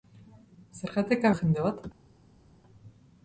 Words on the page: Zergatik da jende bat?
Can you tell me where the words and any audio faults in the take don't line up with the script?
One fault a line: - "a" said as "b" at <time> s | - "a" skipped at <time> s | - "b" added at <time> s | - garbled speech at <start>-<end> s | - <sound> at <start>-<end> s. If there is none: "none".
none